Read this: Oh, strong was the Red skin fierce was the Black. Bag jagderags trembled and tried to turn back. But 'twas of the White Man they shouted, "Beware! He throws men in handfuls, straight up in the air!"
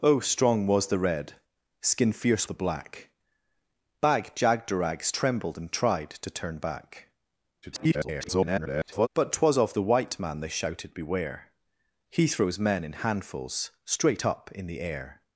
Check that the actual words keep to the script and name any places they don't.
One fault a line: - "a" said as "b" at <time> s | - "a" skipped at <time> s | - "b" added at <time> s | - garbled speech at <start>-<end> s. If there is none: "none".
- "was" skipped at 2.5 s
- garbled speech at 7.6-9.1 s